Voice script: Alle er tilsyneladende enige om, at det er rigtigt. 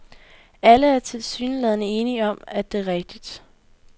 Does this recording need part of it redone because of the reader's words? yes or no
no